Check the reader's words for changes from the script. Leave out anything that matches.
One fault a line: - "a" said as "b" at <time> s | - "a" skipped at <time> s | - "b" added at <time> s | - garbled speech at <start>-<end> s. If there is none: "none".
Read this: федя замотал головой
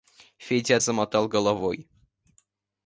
none